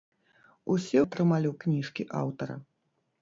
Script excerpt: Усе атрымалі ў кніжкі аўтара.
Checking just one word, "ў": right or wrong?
right